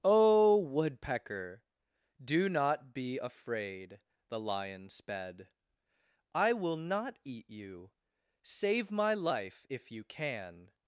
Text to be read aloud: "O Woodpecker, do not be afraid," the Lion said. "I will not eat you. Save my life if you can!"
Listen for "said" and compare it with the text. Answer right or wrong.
wrong